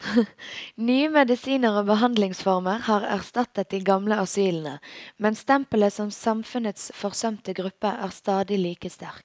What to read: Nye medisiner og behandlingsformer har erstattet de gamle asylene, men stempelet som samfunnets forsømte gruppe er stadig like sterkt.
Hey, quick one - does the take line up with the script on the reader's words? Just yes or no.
yes